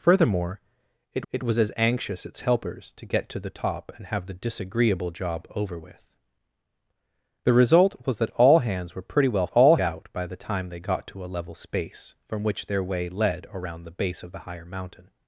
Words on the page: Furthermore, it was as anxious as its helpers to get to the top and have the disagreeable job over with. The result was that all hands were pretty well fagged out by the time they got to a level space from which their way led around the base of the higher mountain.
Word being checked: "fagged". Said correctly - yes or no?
no